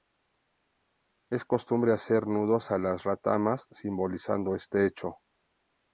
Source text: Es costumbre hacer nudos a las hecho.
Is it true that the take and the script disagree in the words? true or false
true